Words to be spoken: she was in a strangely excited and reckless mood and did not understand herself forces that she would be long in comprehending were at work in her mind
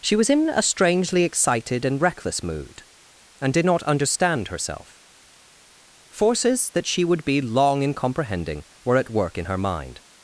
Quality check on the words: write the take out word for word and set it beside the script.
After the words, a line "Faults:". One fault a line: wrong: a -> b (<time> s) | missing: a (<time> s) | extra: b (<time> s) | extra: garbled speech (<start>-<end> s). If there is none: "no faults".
she was in a strangely excited and reckless mood and did not understand herself forces that she would be long in comprehending were at work in her mind
Faults:
no faults